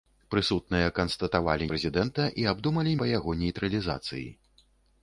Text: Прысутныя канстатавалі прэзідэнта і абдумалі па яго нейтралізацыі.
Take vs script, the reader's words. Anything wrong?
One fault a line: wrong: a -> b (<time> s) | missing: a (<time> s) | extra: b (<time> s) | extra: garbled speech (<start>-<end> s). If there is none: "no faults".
no faults